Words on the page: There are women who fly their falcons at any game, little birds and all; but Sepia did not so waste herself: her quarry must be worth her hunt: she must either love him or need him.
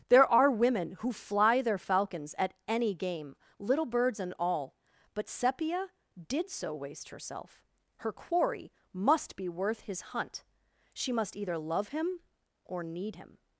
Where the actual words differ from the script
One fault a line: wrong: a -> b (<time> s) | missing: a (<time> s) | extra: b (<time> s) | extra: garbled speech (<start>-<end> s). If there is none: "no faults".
missing: not (6.5 s)
wrong: her -> his (9.8 s)